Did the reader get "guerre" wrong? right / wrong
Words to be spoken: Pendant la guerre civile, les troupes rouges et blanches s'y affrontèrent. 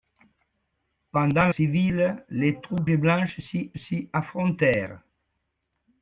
wrong